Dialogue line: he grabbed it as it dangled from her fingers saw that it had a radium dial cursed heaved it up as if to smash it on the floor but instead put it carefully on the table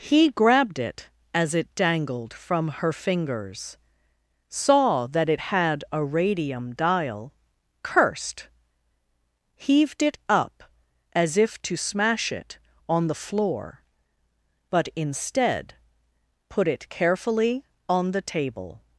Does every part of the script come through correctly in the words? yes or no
yes